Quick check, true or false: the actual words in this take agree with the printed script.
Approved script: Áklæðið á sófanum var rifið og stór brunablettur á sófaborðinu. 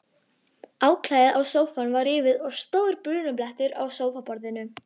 true